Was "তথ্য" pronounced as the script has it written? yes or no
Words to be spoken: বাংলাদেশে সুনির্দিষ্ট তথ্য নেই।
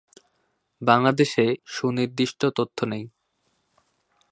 yes